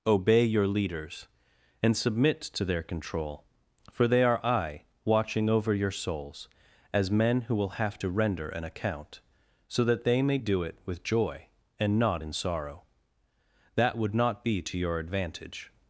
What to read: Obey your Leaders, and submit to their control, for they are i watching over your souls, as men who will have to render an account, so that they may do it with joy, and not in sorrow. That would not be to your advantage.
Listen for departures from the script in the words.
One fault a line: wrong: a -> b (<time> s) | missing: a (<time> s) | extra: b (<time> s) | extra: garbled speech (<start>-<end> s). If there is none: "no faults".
no faults